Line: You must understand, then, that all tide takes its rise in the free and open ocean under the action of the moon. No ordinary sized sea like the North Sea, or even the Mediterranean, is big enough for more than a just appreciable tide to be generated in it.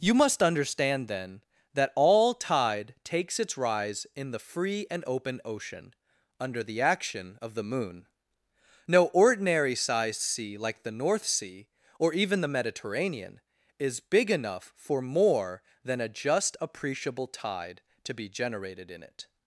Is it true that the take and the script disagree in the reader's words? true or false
false